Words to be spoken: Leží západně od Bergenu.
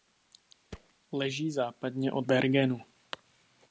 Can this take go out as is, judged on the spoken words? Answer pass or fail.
pass